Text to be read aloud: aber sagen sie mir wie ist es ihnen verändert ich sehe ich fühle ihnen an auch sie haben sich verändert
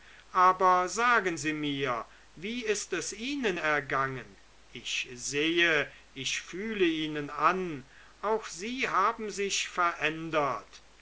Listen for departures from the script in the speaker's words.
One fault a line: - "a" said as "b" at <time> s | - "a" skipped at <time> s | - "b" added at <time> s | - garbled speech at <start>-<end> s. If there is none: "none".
- "verändert" said as "ergangen" at 3.6 s